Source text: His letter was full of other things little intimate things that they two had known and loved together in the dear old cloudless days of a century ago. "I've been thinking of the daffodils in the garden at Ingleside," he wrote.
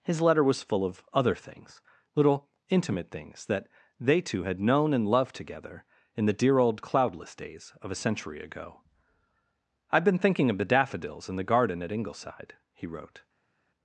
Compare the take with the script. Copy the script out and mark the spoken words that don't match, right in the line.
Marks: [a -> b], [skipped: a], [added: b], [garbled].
His letter was full of other things little intimate things that they two had known and loved together in the dear old cloudless days of a century ago. "I've been thinking of the daffodils in the garden at Ingleside," he wrote.